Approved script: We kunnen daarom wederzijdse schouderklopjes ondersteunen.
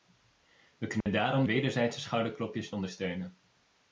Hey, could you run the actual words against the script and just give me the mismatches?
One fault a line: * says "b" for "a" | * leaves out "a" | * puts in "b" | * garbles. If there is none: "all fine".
all fine